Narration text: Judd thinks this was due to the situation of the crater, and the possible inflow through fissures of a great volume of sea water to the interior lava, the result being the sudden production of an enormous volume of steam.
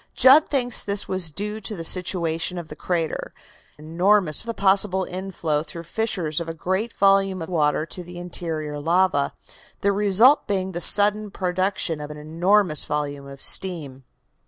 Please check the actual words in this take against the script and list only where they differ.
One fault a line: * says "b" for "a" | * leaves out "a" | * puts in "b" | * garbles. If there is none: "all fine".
* says "enormous" for "and"
* leaves out "sea"